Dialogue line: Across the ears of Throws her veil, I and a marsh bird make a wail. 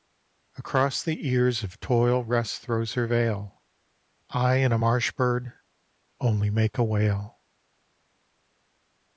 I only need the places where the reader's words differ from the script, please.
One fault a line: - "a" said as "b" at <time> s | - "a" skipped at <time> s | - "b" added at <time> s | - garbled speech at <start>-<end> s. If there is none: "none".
- "Toil Rest" added at 1.8 s
- "only" added at 6.2 s